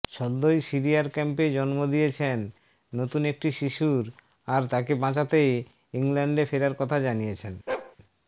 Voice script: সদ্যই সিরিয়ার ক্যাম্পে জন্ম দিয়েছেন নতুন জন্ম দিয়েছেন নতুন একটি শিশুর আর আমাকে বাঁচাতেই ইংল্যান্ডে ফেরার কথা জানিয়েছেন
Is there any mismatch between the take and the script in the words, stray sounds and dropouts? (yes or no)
yes